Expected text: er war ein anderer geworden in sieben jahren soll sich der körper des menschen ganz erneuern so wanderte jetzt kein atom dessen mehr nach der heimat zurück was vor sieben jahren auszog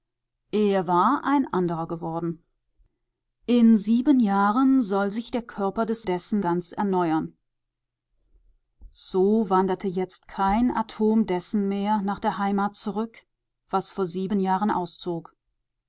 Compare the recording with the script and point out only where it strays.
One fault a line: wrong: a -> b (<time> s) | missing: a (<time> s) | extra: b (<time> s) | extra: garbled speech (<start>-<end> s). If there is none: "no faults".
wrong: menschen -> dessen (6.0 s)